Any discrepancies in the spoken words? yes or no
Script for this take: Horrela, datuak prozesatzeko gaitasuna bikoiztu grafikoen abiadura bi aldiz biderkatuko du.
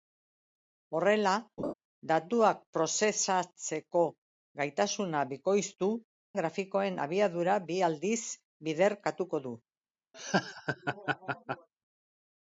no